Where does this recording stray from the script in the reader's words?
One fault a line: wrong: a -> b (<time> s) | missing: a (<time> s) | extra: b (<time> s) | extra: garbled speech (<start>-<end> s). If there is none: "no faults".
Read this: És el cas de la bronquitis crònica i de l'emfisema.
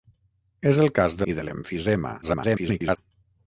missing: la bronquitis crònica (1.3 s)
extra: garbled speech (2.2-3.0 s)